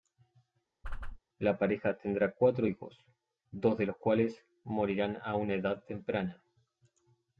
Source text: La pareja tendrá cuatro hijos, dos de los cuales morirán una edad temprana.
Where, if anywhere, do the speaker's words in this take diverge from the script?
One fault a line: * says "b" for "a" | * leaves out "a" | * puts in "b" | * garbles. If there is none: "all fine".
* puts in "a"